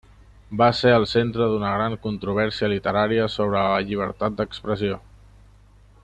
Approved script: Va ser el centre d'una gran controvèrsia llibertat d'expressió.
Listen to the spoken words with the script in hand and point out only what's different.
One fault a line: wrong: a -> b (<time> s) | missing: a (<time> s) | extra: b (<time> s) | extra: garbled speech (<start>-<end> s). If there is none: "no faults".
extra: literària sobre la (2.7 s)